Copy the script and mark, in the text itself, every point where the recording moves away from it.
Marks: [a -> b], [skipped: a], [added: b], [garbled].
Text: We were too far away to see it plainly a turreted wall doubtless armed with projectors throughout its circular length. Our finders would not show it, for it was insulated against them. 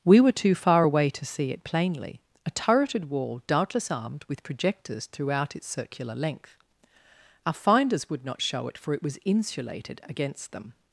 We were too far away to see it plainly a turreted wall doubtless armed with projectors throughout its circular length. Our finders would not show it, for it was insulated against them.